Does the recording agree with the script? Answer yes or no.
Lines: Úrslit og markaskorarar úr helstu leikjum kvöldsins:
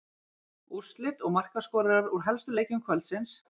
yes